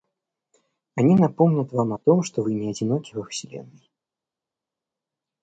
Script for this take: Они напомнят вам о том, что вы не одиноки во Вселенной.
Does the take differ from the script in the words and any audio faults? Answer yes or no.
no